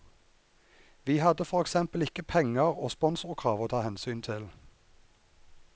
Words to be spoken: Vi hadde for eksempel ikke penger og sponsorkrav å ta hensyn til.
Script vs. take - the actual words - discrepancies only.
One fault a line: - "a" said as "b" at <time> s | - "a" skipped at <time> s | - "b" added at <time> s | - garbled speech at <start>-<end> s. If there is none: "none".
none